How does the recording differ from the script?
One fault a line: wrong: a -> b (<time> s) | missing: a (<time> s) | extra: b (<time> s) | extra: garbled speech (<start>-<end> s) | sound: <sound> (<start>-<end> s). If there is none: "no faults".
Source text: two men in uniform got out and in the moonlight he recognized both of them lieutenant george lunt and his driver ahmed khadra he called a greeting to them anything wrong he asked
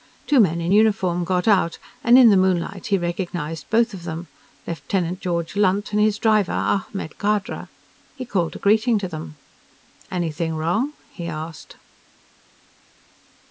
no faults